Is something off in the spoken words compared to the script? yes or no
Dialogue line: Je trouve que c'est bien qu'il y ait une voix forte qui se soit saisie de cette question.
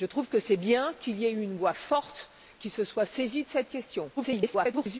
yes